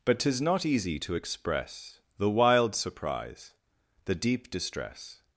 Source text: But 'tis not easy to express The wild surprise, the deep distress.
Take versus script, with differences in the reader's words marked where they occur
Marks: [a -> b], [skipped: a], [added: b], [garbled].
But 'tis not easy to express The wild surprise, the deep distress.